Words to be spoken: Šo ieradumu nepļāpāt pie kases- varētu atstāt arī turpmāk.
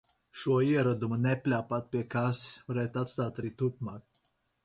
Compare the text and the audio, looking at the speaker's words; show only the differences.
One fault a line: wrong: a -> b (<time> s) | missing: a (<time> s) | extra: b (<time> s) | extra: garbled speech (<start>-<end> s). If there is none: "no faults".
no faults